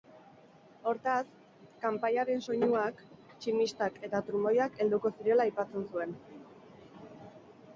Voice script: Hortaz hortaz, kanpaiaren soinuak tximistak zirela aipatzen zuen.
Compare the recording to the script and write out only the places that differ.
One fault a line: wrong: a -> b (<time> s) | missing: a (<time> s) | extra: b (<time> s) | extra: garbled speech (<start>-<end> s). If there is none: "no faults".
missing: hortaz (1.2 s)
extra: eta trumoiak helduko (4.1 s)